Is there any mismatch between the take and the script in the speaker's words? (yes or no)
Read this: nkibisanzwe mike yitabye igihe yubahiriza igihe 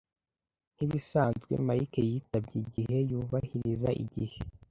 no